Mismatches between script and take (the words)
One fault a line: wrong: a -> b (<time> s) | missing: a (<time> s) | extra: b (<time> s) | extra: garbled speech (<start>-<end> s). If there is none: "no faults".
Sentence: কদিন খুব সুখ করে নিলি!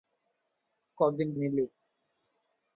missing: খুব সুখ করে (1.3 s)